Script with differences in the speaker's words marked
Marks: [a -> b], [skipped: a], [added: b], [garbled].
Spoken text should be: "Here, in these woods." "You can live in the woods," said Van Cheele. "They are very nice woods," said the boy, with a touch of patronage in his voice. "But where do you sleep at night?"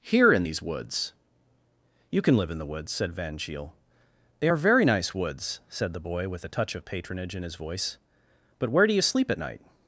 "Here, in these woods." "You can live in the woods," said Van Cheele. "They are very nice woods," said the boy, with a touch of patronage in his voice. "But where do you sleep at night?"